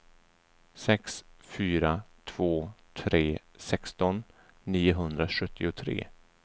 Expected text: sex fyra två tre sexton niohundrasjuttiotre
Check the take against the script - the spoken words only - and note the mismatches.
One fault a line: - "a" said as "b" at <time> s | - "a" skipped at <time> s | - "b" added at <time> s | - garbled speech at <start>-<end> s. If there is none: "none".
none